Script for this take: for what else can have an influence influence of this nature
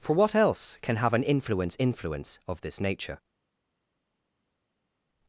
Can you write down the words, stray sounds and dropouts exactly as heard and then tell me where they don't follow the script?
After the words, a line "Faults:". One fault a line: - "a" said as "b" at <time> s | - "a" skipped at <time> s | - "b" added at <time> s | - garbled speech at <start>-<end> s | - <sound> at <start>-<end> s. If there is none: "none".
for what else can have an influence influence of this nature
Faults:
none